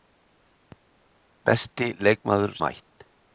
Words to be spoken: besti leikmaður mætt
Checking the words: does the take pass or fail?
pass